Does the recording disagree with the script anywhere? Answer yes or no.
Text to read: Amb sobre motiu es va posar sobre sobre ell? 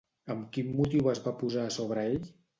yes